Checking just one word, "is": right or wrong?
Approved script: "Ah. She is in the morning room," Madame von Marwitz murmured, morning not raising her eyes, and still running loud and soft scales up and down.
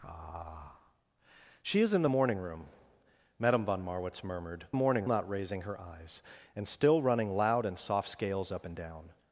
right